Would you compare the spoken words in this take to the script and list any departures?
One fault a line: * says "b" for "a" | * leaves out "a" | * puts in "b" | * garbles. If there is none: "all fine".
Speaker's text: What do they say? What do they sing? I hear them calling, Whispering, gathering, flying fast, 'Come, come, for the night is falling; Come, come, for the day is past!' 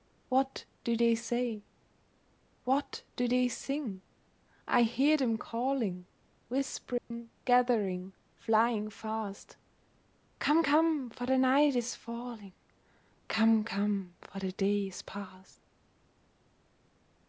all fine